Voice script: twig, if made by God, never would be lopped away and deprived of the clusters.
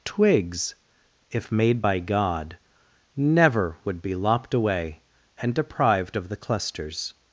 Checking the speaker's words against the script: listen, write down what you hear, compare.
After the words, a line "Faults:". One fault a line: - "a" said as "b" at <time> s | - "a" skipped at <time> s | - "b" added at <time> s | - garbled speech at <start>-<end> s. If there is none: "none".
twigs, if made by God, never would be lopped away and deprived of the clusters.
Faults:
- "twig" said as "twigs" at 0.0 s